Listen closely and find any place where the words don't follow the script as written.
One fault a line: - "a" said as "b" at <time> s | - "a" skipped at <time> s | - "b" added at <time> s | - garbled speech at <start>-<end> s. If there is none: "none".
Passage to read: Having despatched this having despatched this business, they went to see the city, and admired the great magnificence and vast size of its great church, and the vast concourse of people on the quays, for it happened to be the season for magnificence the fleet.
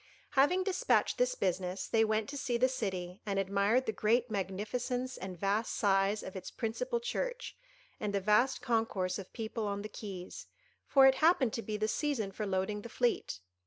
- "having despatched this" skipped at 1.4 s
- "great" said as "principal" at 6.5 s
- "magnificence" said as "loading" at 12.5 s